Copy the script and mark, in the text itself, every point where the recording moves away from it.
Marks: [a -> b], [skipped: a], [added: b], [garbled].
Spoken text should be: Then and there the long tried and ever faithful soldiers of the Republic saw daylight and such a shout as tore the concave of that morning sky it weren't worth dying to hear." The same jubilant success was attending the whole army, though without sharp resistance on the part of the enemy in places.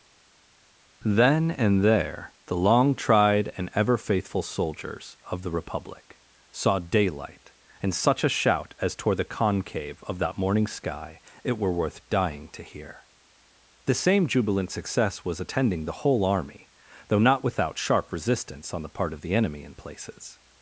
Then and there the long tried and ever faithful soldiers of the Republic saw daylight and such a shout as tore the concave of that morning sky it [weren't -> were] worth dying to hear." The same jubilant success was attending the whole army, though [added: not] without sharp resistance on the part of the enemy in places.